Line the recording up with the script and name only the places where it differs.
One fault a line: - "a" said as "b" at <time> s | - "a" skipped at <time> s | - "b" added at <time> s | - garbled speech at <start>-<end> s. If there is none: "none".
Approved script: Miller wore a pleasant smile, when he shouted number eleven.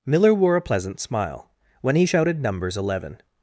- "number" said as "numbers" at 2.4 s